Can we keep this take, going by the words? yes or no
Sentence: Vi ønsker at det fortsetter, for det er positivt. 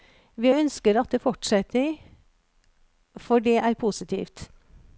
yes